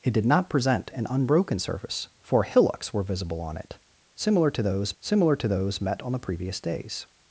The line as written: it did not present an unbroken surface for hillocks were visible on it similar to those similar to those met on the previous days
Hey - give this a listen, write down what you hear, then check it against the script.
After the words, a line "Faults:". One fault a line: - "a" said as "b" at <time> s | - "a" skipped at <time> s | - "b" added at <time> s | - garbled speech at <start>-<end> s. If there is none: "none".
it did not present an unbroken surface for hillocks were visible on it similar to those similar to those met on the previous days
Faults:
none